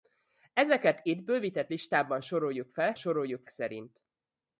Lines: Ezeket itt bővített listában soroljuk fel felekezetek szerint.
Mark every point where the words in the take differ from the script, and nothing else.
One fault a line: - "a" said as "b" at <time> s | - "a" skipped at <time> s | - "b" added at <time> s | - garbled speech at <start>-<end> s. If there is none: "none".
- "felekezetek" said as "soroljuk" at 2.9 s